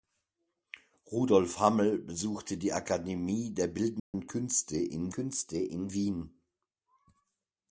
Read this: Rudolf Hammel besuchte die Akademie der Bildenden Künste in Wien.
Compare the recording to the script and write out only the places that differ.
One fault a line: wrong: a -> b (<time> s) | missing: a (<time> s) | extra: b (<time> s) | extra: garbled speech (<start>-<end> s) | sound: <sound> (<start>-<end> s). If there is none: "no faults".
sound: dropout (4.0-4.1 s)
extra: Künste in (5.1 s)